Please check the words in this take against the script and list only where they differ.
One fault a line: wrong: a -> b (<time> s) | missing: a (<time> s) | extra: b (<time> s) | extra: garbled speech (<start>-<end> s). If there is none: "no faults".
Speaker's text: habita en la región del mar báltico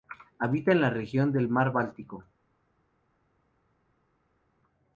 no faults